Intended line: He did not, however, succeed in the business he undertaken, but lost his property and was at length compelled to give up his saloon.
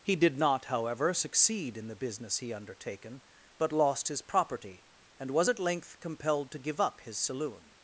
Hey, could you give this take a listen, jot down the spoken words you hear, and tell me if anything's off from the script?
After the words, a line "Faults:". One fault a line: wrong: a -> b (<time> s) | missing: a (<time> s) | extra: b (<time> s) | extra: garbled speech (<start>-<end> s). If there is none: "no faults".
He did not, however, succeed in the business he undertaken, but lost his property and was at length compelled to give up his saloon.
Faults:
no faults